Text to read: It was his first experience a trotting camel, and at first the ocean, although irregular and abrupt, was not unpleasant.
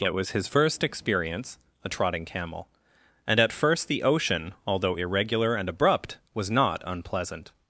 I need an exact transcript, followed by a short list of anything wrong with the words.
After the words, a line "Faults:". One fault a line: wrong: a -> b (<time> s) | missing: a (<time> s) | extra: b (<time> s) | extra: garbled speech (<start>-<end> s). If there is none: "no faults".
It was his first experience a trotting camel, and at first the ocean, although irregular and abrupt, was not unpleasant.
Faults:
no faults